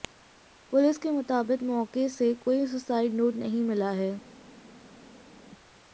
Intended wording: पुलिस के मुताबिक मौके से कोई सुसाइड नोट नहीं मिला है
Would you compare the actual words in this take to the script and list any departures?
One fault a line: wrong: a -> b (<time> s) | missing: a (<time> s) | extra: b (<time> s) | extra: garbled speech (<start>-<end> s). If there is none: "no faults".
no faults